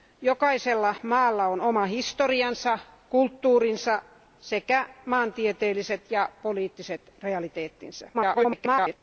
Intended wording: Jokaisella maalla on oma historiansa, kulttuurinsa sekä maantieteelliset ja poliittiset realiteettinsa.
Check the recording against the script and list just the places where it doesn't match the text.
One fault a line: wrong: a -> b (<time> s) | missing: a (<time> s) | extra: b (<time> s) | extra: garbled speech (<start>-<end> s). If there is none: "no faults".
extra: garbled speech (8.1-9.0 s)